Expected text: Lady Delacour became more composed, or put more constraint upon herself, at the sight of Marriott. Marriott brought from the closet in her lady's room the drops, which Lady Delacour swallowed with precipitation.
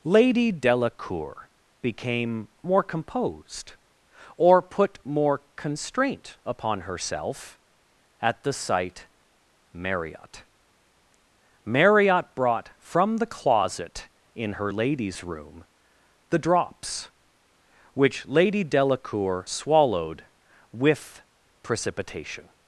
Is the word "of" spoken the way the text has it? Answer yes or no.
no